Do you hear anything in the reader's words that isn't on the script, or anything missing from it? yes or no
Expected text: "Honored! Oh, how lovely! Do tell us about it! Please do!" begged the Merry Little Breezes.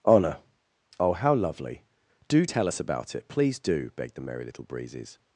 yes